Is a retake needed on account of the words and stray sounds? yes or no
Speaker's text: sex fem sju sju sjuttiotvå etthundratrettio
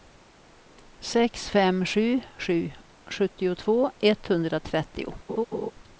yes